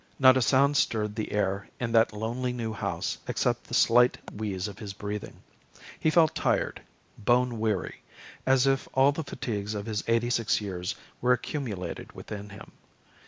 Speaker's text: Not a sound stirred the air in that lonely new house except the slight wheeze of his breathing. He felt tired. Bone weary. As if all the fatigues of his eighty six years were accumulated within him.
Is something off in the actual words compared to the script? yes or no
no